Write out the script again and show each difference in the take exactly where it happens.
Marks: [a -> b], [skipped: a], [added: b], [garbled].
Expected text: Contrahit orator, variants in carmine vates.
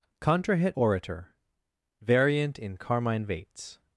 Contrahit orator, [variants -> variant] in carmine vates.